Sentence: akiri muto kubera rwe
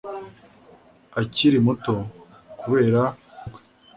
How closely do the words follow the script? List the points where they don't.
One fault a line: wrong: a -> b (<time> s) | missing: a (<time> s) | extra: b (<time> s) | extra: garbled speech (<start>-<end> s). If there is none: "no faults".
no faults